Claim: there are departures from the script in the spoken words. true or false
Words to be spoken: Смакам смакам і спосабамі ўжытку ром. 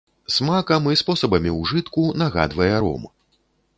true